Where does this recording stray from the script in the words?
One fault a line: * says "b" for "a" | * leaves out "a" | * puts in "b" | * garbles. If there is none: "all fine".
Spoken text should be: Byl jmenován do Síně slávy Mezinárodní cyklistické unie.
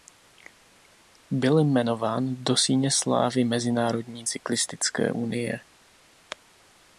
all fine